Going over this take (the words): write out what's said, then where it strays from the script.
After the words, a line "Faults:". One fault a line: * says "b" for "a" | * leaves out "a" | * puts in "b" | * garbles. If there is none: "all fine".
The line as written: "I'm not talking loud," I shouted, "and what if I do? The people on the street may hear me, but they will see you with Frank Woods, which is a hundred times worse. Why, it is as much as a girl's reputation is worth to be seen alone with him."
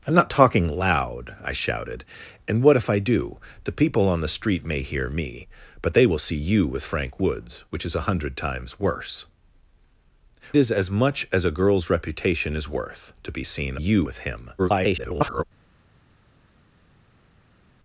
"I'm not talking loud," I shouted, "and what if I do? The people on the street may hear me, but they will see you with Frank Woods, which is a hundred times worse. Is as much as a girl's reputation is worth to be seen you with him." [garbled]
Faults:
* leaves out "Why it"
* says "you" for "alone"
* garbles